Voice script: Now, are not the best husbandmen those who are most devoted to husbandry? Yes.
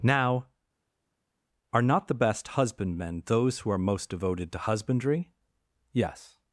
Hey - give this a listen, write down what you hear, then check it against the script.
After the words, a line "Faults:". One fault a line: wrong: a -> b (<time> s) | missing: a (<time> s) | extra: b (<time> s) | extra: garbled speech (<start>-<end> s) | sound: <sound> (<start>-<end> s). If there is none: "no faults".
Now, are not the best husbandmen those who are most devoted to husbandry? Yes.
Faults:
no faults